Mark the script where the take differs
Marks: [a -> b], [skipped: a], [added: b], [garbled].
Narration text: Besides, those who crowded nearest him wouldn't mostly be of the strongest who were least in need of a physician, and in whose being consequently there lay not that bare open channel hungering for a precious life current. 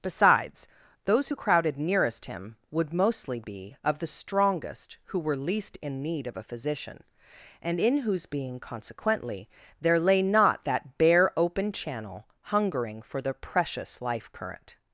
Besides, those who crowded nearest him [wouldn't -> would] mostly be of the strongest who were least in need of a physician, and in whose being consequently there lay not that bare open channel hungering for [a -> the] precious life current.